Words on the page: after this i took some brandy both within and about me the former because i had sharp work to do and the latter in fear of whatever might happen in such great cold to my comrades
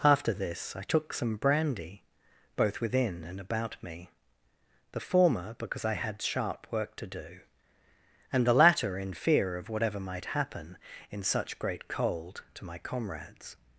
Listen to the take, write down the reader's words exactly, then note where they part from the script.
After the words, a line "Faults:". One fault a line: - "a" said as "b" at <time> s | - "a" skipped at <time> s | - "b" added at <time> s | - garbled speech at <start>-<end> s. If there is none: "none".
after this i took some brandy both within and about me the former because i had sharp work to do and the latter in fear of whatever might happen in such great cold to my comrades
Faults:
none